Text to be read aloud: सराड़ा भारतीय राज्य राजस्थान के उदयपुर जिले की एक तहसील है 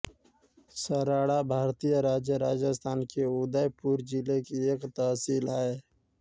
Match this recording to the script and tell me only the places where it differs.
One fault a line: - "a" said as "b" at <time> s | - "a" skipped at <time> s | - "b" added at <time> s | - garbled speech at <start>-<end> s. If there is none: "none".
none